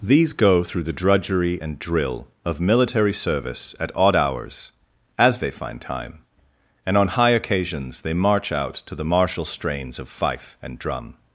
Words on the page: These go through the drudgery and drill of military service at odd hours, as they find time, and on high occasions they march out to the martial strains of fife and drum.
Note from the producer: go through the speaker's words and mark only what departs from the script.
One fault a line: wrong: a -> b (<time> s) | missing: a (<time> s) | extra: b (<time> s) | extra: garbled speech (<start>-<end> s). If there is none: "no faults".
no faults